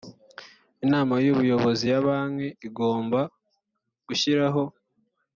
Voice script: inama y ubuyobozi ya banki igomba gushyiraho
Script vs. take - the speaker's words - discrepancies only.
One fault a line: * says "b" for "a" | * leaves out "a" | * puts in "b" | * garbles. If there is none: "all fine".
all fine